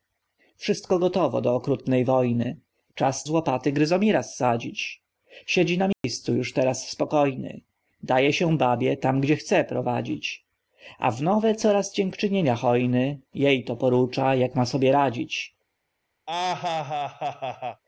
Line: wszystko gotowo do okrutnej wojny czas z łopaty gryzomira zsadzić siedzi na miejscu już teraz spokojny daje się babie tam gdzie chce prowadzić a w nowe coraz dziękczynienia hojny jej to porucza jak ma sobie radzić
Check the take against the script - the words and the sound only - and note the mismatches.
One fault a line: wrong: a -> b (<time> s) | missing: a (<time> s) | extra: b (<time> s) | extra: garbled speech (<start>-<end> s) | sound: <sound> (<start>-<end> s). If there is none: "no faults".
sound: dropout (5.9-6.0 s)
sound: laugh (16.3-17.8 s)